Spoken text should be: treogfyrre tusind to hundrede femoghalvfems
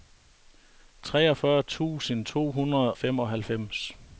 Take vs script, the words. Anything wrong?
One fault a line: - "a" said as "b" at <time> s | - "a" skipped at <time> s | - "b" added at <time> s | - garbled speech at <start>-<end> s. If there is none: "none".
none